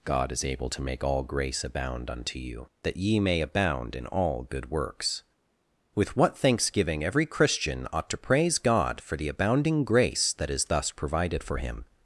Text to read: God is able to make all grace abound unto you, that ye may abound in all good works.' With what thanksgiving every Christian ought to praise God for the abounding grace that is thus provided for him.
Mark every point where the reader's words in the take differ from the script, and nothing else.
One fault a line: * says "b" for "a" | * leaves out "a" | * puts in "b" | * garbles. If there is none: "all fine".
all fine